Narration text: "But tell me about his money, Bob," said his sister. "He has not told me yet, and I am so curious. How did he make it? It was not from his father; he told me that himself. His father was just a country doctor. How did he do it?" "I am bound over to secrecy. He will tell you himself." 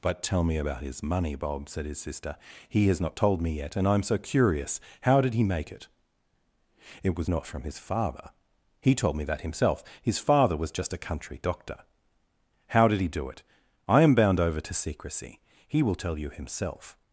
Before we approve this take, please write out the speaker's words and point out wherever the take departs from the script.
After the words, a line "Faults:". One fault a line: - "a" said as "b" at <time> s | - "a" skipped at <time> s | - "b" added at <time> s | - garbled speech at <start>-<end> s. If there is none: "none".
"But tell me about his money, Bob," said his sister. "He has not told me yet, and I am so curious. How did he make it? It was not from his father; he told me that himself. His father was just a country doctor. How did he do it?" "I am bound over to secrecy. He will tell you himself."
Faults:
none